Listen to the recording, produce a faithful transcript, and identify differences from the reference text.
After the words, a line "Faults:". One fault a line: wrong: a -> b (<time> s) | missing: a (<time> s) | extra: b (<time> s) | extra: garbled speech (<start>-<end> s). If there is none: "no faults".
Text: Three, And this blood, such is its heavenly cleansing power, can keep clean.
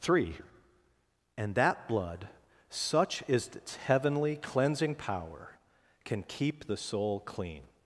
Three, And that blood, such is its heavenly cleansing power, can keep the soul clean.
Faults:
wrong: this -> that (1.5 s)
extra: the soul (6.7 s)